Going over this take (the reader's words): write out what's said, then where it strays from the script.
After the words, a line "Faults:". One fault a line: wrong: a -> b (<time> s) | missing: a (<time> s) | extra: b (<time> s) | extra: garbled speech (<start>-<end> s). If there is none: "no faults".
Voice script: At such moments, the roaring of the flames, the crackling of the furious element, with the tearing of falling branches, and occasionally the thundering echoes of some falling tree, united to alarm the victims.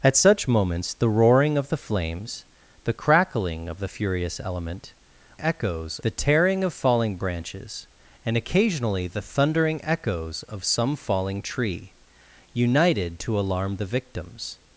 At such moments, the roaring of the flames, the crackling of the furious element, echoes the tearing of falling branches, and occasionally the thundering echoes of some falling tree, united to alarm the victims.
Faults:
wrong: with -> echoes (5.4 s)